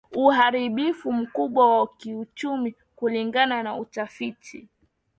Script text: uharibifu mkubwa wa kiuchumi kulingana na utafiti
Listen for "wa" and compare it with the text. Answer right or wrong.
right